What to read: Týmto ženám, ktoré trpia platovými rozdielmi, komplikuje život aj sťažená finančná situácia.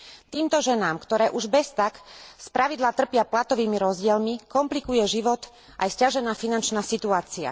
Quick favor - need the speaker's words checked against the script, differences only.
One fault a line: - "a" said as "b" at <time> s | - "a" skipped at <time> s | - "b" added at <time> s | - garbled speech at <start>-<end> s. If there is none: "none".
- "už beztak spravidla" added at 1.3 s